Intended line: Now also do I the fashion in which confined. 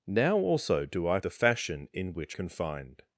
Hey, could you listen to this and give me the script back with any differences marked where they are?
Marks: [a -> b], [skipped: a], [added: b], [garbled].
Now also do I the fashion in which confined.